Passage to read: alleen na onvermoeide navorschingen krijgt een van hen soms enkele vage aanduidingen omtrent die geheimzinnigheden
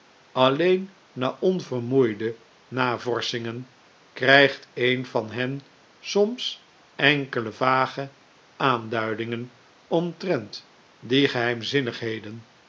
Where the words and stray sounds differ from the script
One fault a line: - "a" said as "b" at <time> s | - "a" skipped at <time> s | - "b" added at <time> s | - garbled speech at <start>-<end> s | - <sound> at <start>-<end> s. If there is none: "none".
none